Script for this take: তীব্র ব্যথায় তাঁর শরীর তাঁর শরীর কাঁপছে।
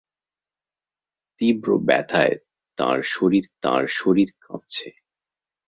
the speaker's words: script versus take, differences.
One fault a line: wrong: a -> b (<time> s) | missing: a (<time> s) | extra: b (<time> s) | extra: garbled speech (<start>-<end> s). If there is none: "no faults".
no faults